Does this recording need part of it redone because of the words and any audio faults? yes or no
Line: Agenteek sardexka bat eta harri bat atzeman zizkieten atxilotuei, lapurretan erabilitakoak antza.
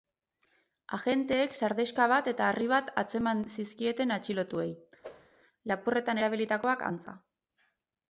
yes